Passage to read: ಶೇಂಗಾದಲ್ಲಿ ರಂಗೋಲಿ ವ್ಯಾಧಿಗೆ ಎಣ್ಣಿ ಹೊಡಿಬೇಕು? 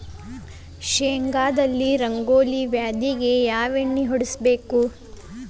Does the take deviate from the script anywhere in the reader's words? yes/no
yes